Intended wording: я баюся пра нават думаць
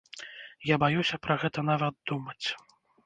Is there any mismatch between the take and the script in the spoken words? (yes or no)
yes